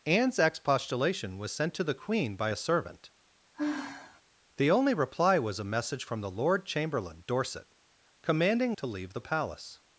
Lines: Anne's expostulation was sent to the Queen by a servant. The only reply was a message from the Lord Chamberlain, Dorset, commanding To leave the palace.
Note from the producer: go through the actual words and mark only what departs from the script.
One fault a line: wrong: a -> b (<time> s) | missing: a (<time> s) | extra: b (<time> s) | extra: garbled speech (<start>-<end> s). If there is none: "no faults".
no faults